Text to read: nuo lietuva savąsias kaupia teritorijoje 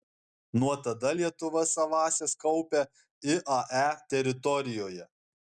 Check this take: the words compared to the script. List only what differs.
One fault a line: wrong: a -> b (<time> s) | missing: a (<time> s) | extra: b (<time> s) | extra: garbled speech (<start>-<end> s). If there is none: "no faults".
extra: tada (0.8 s)
extra: iae (3.3 s)